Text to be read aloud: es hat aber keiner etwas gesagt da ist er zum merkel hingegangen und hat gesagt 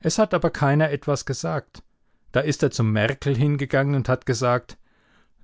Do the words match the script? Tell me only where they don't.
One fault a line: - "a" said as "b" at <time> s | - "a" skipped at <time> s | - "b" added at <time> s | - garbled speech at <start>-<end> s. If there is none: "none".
none